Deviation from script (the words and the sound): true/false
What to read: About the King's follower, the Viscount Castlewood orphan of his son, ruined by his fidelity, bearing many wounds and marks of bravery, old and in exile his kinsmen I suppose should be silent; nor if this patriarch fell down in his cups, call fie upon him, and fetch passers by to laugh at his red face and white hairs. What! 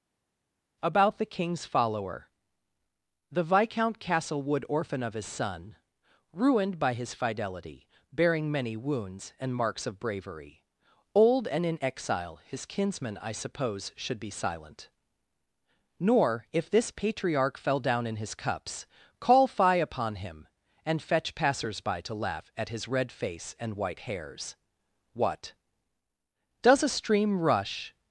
true